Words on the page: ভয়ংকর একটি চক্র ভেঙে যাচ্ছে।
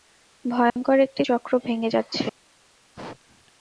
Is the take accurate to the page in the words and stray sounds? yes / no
no